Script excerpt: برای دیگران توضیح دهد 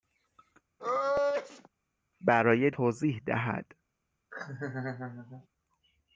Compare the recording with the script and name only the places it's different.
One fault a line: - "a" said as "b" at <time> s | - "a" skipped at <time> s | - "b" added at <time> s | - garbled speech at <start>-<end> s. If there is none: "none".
- "دیگران" skipped at 2.7 s